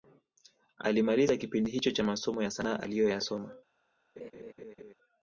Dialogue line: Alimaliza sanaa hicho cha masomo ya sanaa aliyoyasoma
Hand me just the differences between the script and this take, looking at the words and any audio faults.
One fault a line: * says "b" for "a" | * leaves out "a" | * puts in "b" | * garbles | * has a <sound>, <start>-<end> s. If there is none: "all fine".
* says "kipindi" for "sanaa"
* has a laugh, 4.2-4.9 s